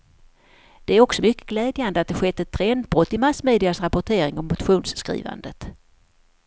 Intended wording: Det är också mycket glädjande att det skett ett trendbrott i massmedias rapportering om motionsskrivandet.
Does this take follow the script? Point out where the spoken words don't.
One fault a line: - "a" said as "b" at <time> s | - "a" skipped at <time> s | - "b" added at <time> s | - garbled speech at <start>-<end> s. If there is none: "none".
none